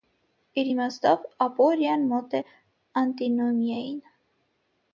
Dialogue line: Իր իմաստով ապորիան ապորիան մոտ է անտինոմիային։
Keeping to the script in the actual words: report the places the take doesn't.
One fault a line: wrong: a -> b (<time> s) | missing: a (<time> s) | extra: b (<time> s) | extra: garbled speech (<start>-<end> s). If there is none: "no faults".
missing: ապորիան (2.0 s)